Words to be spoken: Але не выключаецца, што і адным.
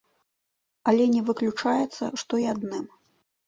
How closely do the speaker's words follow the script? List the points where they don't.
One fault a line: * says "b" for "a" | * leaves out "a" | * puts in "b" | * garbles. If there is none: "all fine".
all fine